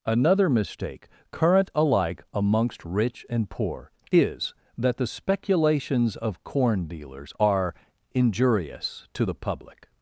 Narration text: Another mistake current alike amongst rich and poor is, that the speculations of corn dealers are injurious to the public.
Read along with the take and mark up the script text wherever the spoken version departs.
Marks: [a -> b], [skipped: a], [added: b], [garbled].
Another mistake current alike amongst rich and poor is, that the speculations of corn dealers are injurious to the public.